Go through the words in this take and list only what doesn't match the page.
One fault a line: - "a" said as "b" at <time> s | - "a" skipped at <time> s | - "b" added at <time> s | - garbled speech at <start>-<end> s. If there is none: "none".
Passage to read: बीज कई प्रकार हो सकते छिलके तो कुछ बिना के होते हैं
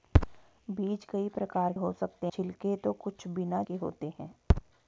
none